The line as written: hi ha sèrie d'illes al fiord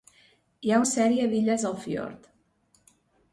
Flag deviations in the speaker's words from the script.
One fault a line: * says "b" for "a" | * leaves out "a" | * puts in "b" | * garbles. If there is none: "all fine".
all fine